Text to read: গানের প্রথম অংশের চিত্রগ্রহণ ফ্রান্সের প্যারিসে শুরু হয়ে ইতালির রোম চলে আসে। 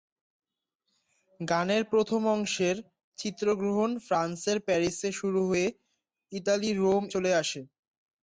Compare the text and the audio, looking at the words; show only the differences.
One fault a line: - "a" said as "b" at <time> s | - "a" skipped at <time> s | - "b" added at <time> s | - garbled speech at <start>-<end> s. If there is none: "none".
none